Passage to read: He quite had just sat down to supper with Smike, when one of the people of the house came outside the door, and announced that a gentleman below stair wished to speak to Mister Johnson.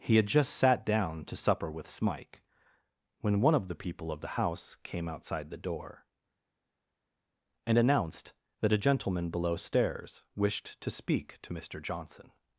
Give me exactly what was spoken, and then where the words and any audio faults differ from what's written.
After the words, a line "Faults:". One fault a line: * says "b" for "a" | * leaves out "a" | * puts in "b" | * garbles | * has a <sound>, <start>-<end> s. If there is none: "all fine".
He had just sat down to supper with Smike, when one of the people of the house came outside the door, and announced that a gentleman below stairs wished to speak to Mister Johnson.
Faults:
* leaves out "quite"
* says "stairs" for "stair"